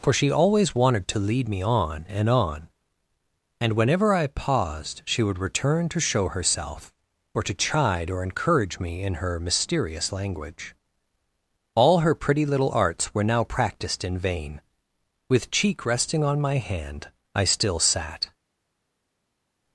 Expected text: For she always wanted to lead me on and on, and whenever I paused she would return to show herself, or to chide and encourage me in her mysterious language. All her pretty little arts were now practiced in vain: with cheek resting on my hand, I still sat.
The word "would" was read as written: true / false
true